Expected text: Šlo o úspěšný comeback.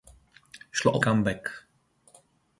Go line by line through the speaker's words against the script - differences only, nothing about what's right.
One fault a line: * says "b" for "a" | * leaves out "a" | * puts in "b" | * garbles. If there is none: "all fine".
* leaves out "úspěšný"